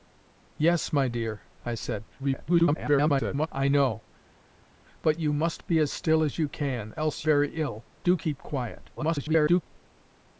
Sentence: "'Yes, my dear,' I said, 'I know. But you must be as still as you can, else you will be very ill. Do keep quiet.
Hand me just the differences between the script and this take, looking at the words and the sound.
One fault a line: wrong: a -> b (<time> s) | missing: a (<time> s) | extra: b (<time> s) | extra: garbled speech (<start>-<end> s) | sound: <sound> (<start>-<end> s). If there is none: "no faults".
extra: garbled speech (2.2-3.5 s)
missing: you will be (7.3 s)
extra: garbled speech (9.0-9.6 s)